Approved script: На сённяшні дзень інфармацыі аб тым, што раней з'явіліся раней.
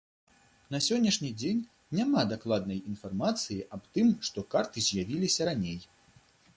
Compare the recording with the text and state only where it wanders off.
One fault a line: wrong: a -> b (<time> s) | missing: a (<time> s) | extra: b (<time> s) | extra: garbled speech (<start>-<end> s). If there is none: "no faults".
extra: няма дакладнай (2.0 s)
wrong: раней -> карты (4.6 s)